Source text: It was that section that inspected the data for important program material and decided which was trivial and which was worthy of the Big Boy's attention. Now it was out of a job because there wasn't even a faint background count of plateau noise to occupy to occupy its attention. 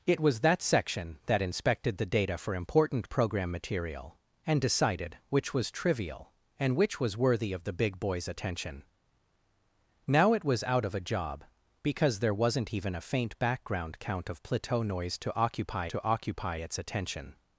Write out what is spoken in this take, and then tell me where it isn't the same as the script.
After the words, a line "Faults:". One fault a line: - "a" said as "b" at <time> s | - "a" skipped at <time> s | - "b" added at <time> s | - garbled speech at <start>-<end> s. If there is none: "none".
It was that section that inspected the data for important program material and decided which was trivial and which was worthy of the Big Boy's attention. Now it was out of a job because there wasn't even a faint background count of plateau noise to occupy to occupy its attention.
Faults:
none